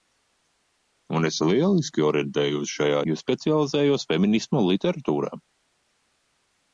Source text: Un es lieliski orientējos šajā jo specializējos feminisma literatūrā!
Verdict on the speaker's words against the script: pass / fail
pass